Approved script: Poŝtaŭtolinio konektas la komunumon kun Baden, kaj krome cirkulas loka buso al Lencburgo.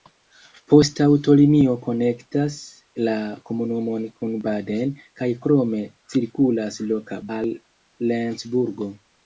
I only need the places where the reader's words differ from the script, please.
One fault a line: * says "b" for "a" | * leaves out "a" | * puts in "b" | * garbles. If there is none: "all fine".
* leaves out "buso"